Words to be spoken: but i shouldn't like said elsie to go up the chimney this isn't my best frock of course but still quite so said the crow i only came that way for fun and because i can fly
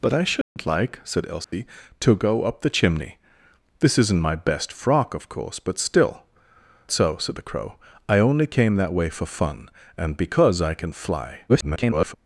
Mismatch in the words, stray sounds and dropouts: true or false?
true